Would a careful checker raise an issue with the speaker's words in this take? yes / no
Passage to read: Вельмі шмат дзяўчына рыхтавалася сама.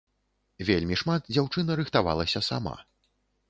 no